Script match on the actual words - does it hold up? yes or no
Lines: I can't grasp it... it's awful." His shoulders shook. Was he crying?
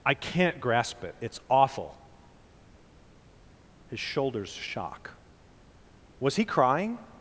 no